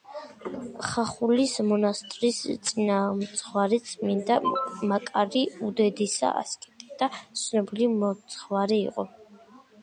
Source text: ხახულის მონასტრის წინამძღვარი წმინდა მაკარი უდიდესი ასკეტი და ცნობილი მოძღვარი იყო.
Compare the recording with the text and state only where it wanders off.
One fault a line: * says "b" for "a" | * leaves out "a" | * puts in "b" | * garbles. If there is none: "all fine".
all fine